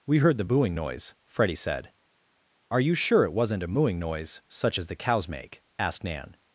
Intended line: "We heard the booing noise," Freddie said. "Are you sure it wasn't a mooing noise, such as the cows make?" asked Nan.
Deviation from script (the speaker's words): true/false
false